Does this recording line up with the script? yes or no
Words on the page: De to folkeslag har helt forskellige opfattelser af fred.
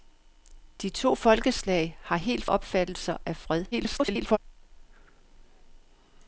no